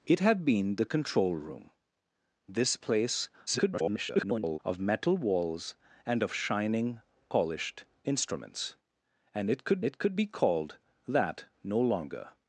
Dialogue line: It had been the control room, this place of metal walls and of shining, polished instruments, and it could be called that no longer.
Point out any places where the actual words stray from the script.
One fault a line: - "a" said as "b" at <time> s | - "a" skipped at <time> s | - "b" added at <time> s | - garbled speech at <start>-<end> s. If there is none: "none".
- garbled speech at 3.5-4.6 s
- "it could" added at 9.8 s